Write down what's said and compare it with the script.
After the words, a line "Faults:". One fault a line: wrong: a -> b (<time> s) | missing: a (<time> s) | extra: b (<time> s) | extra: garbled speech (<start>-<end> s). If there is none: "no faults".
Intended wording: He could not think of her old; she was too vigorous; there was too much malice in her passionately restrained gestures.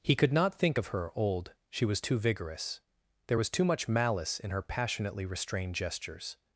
He could not think of her old; she was too vigorous; there was too much malice in her passionately restrained gestures.
Faults:
no faults